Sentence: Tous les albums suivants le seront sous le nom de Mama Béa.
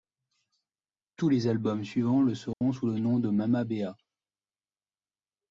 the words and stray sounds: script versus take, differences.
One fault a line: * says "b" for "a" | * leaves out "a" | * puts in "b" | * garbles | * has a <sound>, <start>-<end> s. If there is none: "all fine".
* has a dropout, 2.5-2.6 s